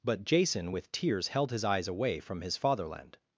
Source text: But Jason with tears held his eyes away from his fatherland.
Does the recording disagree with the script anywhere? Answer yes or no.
no